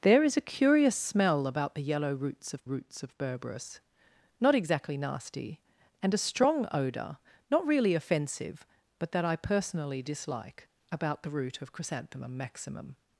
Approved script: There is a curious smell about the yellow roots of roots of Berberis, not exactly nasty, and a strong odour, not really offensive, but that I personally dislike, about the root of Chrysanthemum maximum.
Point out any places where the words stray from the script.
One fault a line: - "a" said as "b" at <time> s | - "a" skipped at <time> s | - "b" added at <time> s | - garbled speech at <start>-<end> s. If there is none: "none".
none